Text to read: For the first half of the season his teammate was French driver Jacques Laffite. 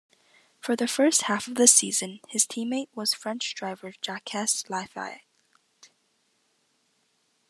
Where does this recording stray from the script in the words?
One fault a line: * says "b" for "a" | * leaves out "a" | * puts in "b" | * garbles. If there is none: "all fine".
all fine